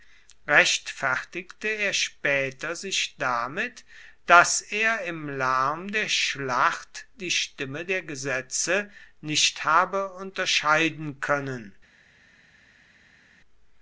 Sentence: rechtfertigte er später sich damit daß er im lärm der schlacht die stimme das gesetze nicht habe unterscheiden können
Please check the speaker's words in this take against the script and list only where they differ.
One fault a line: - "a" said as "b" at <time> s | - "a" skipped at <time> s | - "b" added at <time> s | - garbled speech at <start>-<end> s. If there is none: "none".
- "das" said as "der" at 7.8 s